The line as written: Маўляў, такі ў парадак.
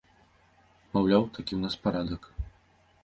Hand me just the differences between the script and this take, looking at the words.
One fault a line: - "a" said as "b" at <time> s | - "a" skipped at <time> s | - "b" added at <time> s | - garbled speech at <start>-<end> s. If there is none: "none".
- "нас" added at 1.6 s